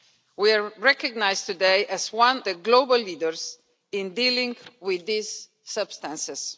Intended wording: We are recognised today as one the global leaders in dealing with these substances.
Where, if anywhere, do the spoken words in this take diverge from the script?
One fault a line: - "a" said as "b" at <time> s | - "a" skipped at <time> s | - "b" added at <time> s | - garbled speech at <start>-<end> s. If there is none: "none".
none